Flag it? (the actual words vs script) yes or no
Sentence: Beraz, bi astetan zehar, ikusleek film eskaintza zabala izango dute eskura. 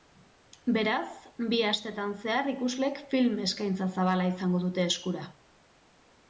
no